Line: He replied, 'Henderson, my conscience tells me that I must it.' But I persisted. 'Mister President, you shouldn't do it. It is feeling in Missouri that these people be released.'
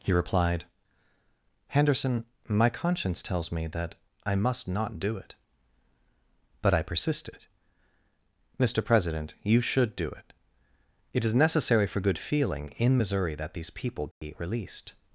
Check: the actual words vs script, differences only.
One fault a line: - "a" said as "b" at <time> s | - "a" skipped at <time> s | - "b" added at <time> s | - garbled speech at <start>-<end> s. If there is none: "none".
- "not do" added at 4.7 s
- "shouldn't" said as "should" at 9.6 s
- "necessary for good" added at 11.3 s